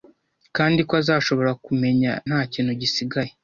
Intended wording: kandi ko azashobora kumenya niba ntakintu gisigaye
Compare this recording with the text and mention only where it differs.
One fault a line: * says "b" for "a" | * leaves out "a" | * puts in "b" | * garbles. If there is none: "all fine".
* leaves out "niba"